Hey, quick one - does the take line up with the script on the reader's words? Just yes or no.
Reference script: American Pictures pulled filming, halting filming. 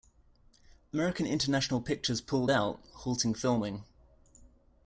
no